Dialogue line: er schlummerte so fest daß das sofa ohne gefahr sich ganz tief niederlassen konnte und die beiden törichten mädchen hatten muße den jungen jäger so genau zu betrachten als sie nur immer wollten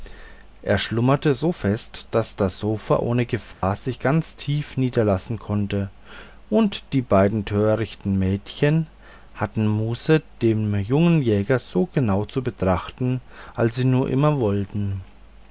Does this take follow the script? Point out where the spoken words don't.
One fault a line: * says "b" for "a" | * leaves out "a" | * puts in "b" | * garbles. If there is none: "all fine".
all fine